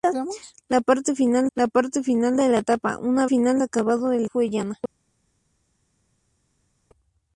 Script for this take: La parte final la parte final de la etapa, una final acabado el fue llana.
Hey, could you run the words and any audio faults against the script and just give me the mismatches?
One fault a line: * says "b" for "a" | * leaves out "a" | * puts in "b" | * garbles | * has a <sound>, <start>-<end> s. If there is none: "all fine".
all fine